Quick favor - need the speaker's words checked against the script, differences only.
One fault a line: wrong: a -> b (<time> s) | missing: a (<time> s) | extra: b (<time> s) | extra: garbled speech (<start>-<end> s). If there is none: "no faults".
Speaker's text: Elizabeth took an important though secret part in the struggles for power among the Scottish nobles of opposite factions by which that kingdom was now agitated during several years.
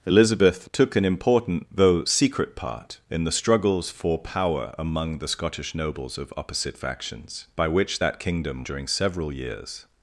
missing: was now agitated (8.6 s)